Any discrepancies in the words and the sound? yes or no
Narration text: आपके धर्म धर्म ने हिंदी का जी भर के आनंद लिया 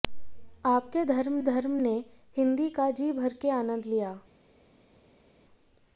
no